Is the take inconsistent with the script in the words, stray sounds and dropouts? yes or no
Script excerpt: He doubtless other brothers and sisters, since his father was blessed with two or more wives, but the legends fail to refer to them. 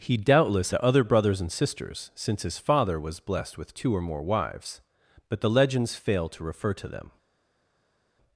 no